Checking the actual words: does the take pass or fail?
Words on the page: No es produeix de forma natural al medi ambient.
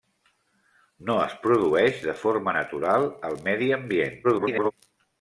fail